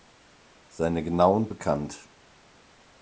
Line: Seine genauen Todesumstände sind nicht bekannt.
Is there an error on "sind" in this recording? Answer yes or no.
yes